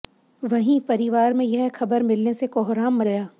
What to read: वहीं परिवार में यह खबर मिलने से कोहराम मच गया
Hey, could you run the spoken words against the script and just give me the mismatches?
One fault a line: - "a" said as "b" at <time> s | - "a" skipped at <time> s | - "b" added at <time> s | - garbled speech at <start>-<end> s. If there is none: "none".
- "मच" skipped at 3.0 s